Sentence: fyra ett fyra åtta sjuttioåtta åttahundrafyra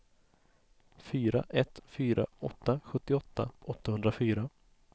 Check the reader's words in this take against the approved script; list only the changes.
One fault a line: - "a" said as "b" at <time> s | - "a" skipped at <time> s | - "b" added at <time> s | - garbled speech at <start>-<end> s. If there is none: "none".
none